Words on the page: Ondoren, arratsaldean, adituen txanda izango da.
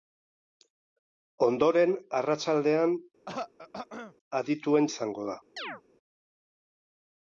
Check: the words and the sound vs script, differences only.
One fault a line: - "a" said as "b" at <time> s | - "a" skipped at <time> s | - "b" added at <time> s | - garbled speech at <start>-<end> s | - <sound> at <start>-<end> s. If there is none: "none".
- throat clearing at 3.3-4.1 s
- "txanda" skipped at 4.9 s
- chirp at 5.6-5.8 s